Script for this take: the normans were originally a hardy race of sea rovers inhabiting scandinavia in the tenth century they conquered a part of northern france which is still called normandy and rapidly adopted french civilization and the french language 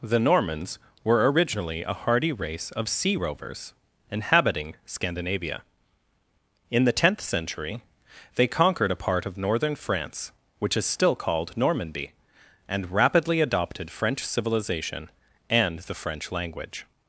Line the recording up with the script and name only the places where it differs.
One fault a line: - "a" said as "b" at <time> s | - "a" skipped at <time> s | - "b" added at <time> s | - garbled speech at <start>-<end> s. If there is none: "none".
none